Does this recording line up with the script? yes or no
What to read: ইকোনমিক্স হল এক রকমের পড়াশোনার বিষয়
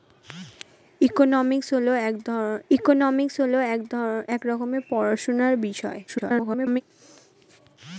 no